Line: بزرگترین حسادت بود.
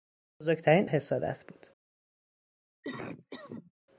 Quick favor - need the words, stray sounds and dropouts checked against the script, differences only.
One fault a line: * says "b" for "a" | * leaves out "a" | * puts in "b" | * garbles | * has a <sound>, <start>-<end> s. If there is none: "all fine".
* has a cough, 2.8-3.7 s